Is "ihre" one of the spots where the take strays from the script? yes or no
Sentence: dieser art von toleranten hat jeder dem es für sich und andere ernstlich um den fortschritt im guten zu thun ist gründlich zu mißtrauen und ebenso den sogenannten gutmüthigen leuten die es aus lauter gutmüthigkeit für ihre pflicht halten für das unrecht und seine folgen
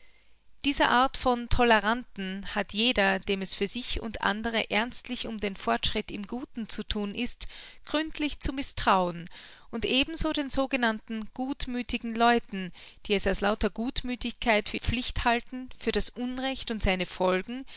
yes